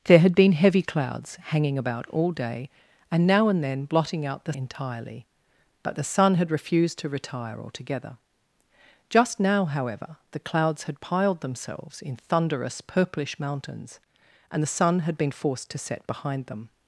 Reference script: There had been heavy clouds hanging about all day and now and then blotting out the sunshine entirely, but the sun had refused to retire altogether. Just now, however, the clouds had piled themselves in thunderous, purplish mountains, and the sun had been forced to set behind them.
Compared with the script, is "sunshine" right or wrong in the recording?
wrong